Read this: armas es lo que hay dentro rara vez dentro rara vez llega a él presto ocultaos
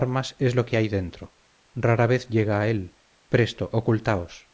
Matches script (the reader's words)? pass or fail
fail